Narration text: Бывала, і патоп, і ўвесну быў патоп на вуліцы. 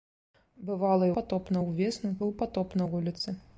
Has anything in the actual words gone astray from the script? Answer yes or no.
no